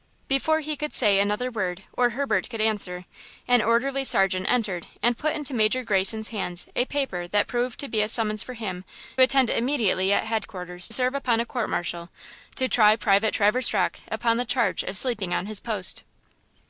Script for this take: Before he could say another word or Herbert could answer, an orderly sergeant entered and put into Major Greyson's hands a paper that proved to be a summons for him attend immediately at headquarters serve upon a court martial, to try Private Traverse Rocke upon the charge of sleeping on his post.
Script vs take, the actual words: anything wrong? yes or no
no